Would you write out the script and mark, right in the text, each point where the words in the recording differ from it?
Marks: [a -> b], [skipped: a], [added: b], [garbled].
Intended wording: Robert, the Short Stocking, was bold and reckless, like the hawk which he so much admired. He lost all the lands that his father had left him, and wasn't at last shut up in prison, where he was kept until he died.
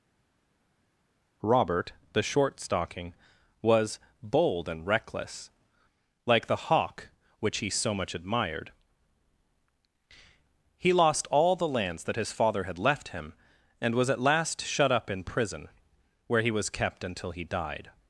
Robert, the Short Stocking, was bold and reckless, like the hawk which he so much admired. He lost all the lands that his father had left him, and [wasn't -> was] at last shut up in prison, where he was kept until he died.